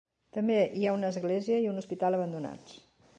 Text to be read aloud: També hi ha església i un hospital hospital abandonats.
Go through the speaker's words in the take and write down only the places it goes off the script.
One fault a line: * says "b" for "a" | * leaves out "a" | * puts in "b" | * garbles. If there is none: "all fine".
* puts in "una"
* leaves out "hospital"